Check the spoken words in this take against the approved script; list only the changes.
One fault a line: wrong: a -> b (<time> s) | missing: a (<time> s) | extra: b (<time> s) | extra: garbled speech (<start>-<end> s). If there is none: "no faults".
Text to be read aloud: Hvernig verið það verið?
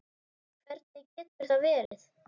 wrong: verið -> getur (1.2 s)